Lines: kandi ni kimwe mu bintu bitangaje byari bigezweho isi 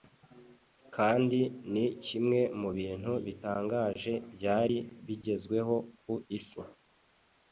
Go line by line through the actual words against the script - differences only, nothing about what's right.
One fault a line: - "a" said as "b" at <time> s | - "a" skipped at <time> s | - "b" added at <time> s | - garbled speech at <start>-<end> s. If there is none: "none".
- "ku" added at 6.0 s